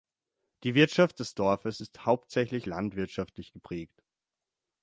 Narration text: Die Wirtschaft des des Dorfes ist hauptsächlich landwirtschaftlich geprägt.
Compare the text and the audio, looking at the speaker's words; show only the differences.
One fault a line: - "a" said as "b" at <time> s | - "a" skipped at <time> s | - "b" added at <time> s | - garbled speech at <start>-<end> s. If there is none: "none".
- "des" skipped at 1.4 s